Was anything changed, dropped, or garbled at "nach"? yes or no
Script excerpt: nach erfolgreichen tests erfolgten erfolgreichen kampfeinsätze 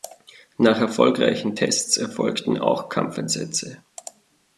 no